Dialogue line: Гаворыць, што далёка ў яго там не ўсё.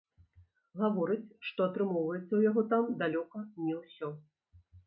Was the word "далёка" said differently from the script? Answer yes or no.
yes